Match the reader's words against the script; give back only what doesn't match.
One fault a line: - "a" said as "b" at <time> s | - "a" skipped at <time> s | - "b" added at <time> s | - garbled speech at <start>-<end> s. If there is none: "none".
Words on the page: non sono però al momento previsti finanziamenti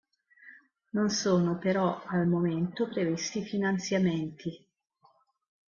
none